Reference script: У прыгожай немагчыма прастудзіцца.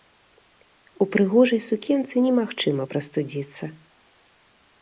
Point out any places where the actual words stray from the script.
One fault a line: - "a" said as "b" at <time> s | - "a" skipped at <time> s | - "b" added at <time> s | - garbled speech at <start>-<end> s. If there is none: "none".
- "сукенцы" added at 1.7 s